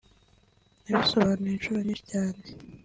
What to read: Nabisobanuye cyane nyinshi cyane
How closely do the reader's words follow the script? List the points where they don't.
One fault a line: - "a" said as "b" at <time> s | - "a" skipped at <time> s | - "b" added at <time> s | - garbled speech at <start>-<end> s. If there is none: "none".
- "cyane" said as "inshuro" at 1.5 s